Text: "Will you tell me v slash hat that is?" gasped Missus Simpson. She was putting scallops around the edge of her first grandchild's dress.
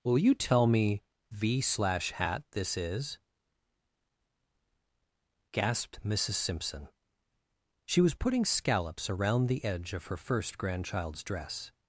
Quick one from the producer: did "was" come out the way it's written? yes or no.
yes